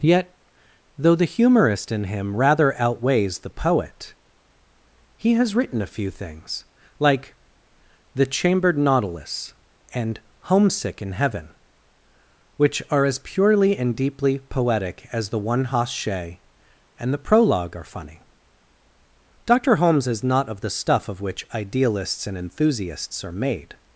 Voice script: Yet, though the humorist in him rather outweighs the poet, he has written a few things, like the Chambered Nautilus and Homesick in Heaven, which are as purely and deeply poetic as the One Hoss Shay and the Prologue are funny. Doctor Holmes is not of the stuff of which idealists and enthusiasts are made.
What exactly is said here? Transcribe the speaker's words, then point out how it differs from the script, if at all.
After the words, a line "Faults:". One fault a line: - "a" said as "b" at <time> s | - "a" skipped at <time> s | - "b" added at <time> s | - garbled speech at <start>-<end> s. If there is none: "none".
Yet, though the humorist in him rather outweighs the poet, he has written a few things, like the Chambered Nautilus and Homesick in Heaven, which are as purely and deeply poetic as the One Hoss Shay and the Prologue are funny. Doctor Holmes is not of the stuff of which idealists and enthusiasts are made.
Faults:
none